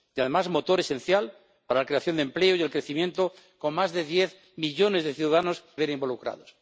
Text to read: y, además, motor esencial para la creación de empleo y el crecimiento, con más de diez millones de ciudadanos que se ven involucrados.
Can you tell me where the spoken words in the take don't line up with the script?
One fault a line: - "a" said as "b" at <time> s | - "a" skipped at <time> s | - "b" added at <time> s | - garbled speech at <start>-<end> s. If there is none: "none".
- "que se" skipped at 5.6 s